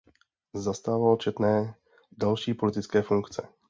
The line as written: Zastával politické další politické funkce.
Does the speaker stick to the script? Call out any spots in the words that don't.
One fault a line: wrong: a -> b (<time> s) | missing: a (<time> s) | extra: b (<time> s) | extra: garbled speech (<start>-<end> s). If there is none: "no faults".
wrong: politické -> četné (1.2 s)